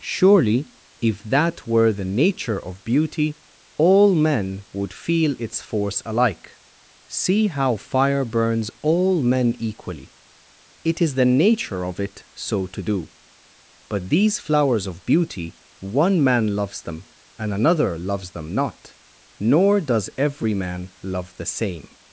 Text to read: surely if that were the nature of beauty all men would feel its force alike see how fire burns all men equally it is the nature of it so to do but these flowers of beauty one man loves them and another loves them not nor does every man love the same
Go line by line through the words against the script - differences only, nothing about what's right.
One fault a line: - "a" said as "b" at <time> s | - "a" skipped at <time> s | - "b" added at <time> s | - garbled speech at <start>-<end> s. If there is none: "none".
none